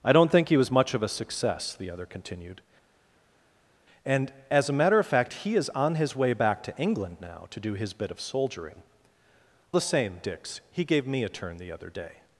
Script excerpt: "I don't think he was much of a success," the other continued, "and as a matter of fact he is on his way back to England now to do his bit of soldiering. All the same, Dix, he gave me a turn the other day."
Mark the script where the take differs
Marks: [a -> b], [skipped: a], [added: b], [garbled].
"I don't think he was much of a success," the other continued, "and as a matter of fact he is on his way back to England now to do his bit of soldiering. [skipped: All] the same, Dix, he gave me a turn the other day."